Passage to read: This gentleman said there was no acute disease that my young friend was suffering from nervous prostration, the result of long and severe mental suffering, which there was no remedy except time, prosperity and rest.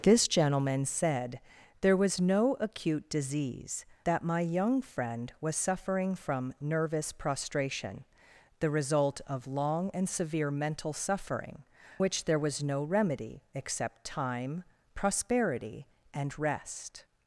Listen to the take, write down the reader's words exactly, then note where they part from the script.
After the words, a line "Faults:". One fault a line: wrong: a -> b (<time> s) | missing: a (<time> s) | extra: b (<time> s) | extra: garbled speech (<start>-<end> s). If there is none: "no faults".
This gentleman said there was no acute disease that my young friend was suffering from nervous prostration, the result of long and severe mental suffering, which there was no remedy except time, prosperity and rest.
Faults:
no faults